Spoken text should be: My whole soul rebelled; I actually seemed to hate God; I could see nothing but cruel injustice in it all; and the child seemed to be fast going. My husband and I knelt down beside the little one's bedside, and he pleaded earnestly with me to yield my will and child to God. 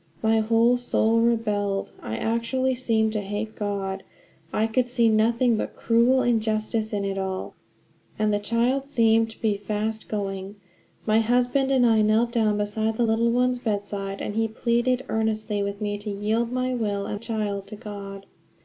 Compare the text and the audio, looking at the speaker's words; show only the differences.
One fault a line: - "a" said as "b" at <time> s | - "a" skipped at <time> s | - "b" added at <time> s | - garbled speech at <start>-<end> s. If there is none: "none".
none